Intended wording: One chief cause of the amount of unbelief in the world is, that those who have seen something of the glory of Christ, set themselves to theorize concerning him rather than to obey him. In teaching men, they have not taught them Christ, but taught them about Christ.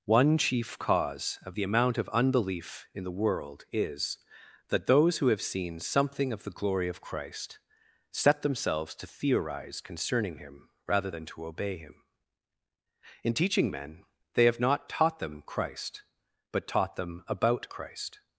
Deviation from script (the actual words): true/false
false